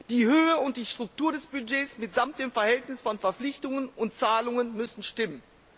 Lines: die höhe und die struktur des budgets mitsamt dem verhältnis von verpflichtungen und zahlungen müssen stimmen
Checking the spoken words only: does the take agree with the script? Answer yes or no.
yes